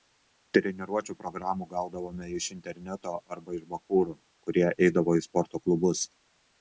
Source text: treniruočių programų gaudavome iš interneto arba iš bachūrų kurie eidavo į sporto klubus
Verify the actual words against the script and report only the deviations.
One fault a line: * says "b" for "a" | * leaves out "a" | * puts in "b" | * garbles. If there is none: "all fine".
all fine